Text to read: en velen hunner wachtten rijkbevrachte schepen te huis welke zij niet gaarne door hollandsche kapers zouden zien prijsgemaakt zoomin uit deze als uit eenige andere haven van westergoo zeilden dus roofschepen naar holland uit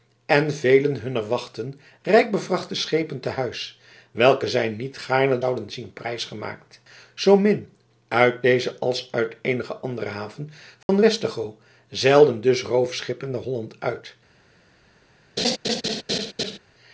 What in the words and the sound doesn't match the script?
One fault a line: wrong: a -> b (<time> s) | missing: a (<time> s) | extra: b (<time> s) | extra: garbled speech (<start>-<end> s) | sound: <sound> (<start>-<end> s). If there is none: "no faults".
missing: door hollandsche kapers (5.4 s)
sound: dropout (10.8-10.9 s)
sound: laugh (15.4-16.6 s)